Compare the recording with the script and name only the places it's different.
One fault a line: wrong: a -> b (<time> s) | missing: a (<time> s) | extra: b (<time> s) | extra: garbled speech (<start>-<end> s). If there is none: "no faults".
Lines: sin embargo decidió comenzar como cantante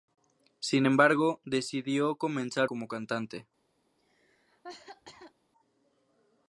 no faults